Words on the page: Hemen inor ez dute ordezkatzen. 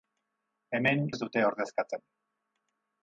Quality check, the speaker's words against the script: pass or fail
fail